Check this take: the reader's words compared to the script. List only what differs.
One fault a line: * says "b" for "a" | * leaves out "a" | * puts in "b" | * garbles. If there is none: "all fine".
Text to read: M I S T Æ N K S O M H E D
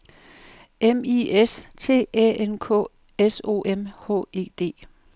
all fine